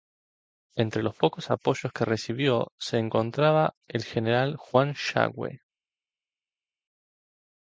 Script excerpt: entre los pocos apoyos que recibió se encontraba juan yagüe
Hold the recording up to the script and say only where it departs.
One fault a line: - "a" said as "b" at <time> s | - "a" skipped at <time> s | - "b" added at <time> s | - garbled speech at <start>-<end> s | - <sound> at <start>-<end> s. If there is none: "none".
- "el general" added at 3.9 s